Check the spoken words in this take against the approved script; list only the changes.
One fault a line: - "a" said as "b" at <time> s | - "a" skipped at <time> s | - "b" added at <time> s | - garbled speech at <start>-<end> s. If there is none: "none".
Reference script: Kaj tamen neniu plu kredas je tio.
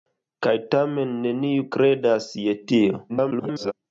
- "plu" skipped at 1.7 s
- garbled speech at 3.1-3.7 s